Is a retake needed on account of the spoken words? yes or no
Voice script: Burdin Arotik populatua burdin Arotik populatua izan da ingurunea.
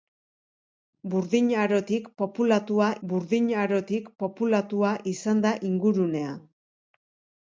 no